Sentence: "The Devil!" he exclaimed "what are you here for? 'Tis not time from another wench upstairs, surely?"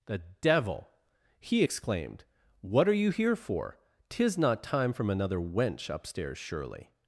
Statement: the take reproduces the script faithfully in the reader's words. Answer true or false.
true